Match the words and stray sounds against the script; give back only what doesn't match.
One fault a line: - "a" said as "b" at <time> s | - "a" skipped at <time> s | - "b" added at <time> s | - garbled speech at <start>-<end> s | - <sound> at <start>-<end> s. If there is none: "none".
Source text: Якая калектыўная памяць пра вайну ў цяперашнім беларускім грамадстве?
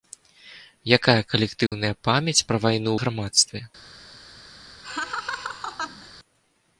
- dropout at 1.7-1.7 s
- "ў цяперашнім беларускім" skipped at 2.9 s
- laugh at 4.8-6.1 s